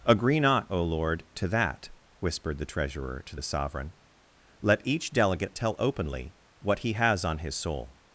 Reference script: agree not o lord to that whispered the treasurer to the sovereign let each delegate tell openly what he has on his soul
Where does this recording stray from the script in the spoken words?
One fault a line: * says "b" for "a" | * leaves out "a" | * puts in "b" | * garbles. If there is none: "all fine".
all fine